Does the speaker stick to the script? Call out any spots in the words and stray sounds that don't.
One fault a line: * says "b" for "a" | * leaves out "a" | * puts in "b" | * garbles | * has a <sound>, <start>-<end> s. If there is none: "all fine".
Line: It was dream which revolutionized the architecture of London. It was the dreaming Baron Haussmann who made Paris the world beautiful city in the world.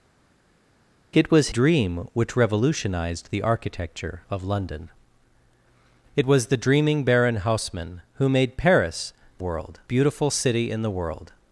all fine